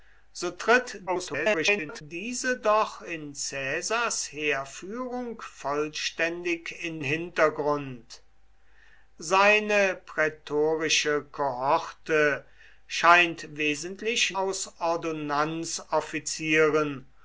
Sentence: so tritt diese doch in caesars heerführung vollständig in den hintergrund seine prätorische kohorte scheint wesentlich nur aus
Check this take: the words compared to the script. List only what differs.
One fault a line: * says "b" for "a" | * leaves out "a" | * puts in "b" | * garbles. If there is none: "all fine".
* garbles
* leaves out "den"
* leaves out "nur"